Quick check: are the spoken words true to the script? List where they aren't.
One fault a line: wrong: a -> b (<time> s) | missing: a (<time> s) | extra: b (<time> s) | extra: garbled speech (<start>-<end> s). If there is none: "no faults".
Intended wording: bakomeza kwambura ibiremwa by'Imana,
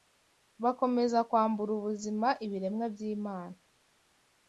extra: ubuzima (1.8 s)